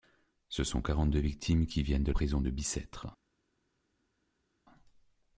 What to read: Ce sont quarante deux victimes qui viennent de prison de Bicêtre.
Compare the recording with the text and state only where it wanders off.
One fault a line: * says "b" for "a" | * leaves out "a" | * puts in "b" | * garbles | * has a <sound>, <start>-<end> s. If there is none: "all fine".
all fine